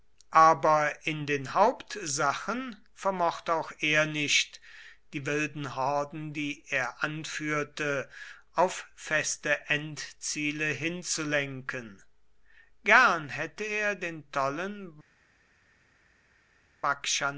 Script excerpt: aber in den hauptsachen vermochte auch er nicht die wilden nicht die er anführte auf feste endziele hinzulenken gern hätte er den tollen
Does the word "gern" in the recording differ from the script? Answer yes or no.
no